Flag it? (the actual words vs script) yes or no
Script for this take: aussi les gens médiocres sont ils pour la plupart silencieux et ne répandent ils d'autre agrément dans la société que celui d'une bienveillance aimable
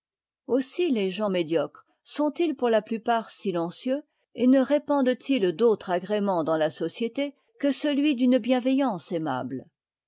no